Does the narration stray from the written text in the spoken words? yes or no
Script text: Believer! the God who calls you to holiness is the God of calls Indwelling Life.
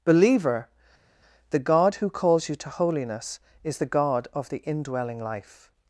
yes